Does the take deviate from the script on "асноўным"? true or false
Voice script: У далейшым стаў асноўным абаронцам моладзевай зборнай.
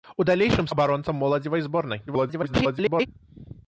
true